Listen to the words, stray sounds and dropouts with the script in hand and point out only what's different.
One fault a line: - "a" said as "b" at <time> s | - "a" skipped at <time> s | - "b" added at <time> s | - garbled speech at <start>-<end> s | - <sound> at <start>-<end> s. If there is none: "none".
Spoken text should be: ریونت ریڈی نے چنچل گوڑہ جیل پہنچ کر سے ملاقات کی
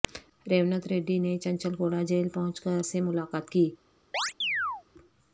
- chirp at 4.1-4.8 s